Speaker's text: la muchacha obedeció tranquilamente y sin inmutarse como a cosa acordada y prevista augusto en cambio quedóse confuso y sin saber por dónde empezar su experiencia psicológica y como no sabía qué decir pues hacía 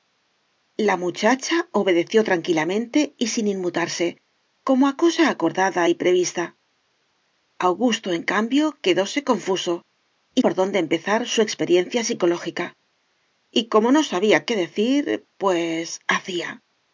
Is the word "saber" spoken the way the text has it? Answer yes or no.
no